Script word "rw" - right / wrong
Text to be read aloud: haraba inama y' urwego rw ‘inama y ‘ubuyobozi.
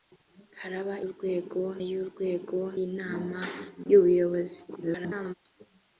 wrong